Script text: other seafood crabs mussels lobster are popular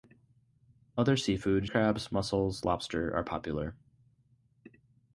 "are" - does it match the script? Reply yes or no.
yes